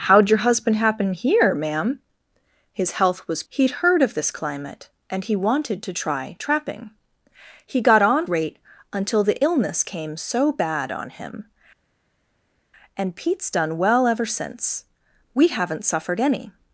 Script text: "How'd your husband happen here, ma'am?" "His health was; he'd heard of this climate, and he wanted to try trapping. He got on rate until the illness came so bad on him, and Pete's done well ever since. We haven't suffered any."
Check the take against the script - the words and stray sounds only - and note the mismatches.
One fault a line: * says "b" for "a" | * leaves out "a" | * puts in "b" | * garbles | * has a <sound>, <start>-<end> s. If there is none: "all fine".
all fine